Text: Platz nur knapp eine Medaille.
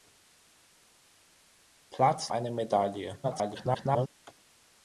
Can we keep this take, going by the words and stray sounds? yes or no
no